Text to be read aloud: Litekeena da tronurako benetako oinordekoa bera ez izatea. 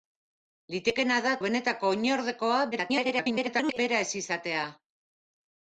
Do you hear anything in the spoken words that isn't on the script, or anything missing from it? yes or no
yes